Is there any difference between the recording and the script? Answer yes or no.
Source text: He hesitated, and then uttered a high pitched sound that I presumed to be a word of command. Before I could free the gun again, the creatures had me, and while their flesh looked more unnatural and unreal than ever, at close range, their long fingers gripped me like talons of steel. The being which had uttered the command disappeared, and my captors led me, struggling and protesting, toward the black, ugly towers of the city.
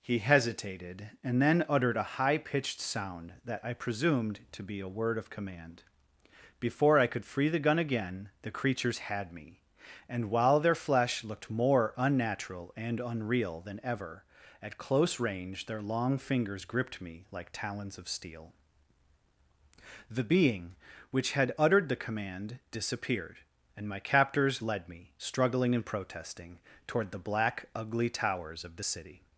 no